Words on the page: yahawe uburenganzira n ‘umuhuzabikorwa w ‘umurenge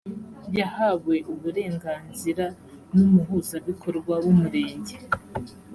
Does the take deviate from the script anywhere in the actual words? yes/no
no